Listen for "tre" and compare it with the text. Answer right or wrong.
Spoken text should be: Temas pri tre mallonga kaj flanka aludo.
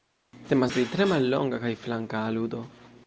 right